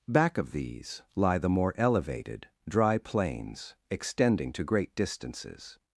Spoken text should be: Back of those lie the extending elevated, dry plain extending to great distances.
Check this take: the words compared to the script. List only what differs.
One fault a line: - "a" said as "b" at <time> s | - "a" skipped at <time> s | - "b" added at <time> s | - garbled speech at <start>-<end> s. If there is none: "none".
- "those" said as "these" at 0.5 s
- "extending" said as "more" at 1.5 s
- "plain" said as "plains" at 3.0 s